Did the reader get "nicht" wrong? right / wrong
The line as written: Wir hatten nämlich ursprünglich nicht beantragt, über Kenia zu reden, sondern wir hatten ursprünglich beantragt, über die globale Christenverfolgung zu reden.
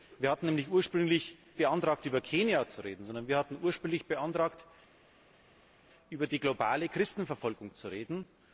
wrong